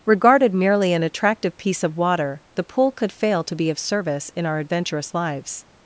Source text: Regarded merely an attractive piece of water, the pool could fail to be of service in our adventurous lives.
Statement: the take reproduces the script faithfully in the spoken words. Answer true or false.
true